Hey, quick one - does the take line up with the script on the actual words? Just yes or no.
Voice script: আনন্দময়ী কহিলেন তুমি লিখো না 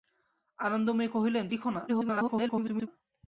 no